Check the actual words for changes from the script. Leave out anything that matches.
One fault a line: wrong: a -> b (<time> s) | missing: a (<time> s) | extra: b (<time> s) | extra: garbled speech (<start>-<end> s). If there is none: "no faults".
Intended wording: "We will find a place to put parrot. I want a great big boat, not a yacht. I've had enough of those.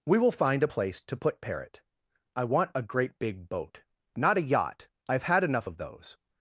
no faults